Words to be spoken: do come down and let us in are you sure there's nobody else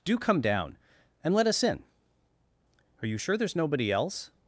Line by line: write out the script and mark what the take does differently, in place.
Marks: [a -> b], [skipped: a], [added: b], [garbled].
do come down and let us in are you sure there's nobody else